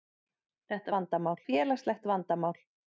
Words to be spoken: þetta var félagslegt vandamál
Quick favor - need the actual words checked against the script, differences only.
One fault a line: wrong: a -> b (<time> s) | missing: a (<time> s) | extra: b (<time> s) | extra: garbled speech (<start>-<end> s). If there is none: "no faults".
wrong: var -> vandamál (1.0 s)